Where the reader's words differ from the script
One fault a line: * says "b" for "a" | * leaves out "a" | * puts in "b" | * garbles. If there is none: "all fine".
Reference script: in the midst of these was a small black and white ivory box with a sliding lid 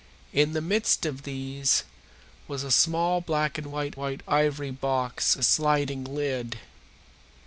* puts in "white"
* leaves out "with"